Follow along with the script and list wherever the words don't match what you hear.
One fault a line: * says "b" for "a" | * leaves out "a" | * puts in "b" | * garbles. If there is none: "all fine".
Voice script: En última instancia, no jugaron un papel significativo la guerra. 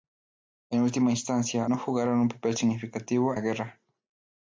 all fine